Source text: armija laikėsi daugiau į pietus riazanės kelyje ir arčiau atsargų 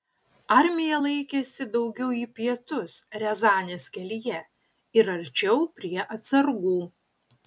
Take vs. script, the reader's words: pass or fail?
fail